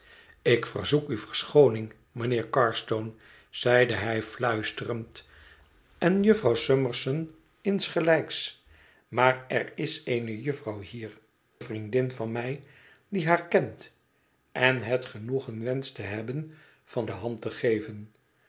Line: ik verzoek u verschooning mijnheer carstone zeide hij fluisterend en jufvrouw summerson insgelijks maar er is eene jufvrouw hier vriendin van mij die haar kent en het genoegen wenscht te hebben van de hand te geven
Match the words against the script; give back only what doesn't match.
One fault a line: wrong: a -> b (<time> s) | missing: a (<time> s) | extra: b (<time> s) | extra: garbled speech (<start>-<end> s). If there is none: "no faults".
no faults